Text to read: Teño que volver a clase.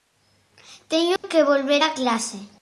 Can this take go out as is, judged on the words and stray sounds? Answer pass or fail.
fail